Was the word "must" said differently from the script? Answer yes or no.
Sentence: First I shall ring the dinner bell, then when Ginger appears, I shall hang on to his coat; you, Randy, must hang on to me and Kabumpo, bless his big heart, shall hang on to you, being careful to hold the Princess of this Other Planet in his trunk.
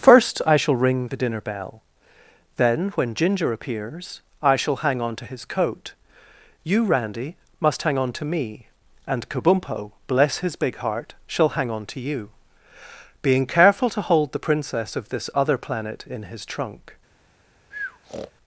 no